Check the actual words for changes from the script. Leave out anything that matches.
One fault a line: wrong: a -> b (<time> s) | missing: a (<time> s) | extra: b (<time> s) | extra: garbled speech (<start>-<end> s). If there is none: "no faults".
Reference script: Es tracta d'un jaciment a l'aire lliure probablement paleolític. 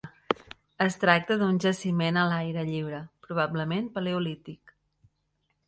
no faults